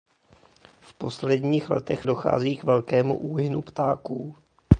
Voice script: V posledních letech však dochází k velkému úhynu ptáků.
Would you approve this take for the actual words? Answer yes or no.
no